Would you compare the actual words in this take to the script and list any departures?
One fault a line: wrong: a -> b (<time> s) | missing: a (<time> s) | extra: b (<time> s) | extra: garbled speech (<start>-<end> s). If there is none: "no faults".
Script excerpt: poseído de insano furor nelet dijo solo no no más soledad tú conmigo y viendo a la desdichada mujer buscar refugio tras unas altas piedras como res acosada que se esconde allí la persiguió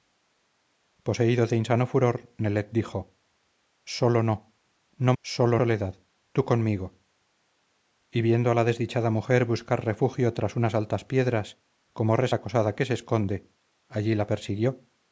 wrong: más -> solo (5.2 s)